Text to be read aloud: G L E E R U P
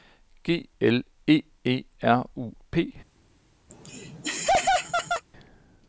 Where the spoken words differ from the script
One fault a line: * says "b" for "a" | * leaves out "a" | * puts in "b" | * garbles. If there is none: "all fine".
all fine